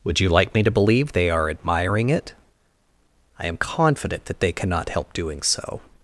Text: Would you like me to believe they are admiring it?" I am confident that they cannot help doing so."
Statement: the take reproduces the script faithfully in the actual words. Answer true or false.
true